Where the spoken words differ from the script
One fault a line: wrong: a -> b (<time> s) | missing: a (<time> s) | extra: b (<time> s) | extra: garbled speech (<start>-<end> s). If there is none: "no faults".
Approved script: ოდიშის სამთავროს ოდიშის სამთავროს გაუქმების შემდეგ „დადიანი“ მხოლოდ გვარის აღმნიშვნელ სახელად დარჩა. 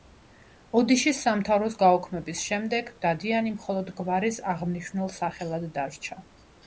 missing: ოდიშის სამთავროს (1.8 s)